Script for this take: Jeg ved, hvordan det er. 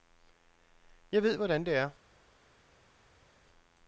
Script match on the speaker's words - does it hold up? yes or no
yes